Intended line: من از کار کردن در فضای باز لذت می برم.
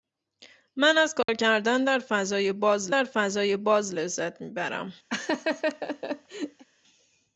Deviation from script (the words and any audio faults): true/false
true